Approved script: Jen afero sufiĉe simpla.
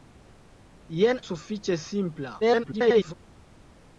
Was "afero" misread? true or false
true